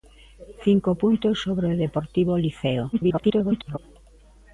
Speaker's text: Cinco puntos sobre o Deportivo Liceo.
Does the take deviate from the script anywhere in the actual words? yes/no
yes